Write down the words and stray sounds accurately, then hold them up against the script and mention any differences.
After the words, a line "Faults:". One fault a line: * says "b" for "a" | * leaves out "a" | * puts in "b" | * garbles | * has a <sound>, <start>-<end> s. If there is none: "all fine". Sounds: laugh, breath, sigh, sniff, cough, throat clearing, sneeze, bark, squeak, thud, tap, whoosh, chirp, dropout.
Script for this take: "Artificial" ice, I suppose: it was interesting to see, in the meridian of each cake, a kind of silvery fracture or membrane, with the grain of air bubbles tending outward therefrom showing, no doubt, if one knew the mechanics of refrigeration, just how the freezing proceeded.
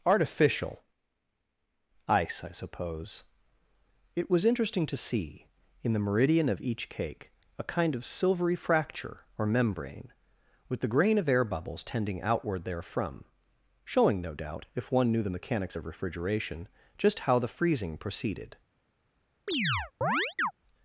"Artificial" ice, I suppose: it was interesting to see, in the meridian of each cake, a kind of silvery fracture or membrane, with the grain of air bubbles tending outward therefrom showing, no doubt, if one knew the mechanics of refrigeration, just how the freezing proceeded.
Faults:
* has a chirp, 19.5-20.5 s